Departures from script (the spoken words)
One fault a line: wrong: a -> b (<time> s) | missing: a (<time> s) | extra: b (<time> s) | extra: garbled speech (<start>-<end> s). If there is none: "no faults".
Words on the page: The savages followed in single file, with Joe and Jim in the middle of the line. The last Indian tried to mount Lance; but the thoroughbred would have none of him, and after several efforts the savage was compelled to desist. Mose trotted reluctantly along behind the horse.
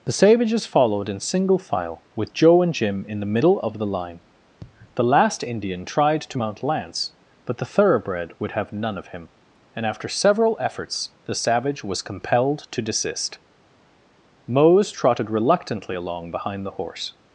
no faults